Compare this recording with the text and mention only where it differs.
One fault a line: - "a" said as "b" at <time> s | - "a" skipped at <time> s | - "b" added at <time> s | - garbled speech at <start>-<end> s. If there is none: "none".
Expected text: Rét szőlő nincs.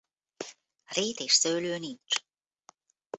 - "és" added at 1.2 s